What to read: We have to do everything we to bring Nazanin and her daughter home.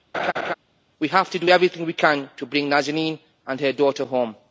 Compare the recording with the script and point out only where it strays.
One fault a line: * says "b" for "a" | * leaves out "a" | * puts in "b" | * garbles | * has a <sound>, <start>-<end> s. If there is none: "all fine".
* has a laugh, 0.1-0.5 s
* puts in "can"